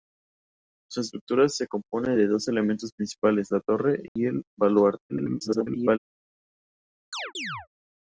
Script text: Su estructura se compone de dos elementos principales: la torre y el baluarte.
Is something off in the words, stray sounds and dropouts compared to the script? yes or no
yes